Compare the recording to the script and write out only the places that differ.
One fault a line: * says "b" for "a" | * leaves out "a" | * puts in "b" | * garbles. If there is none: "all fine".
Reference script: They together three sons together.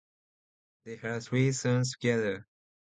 * says "had" for "together"